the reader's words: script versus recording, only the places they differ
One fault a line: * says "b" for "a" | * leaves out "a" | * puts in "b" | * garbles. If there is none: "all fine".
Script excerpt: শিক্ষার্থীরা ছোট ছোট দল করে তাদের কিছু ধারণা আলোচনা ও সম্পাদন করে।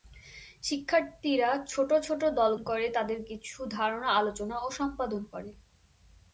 all fine